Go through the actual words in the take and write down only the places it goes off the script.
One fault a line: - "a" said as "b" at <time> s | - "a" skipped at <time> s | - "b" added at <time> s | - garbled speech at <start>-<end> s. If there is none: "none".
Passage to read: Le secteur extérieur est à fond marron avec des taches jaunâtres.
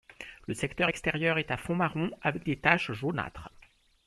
none